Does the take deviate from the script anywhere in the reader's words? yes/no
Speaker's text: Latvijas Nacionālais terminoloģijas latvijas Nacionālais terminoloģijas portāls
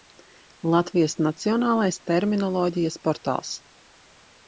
yes